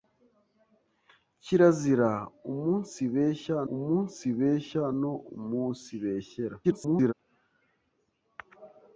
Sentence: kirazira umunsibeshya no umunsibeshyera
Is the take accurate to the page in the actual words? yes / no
no